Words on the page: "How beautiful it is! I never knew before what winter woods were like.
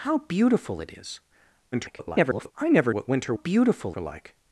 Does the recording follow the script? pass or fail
fail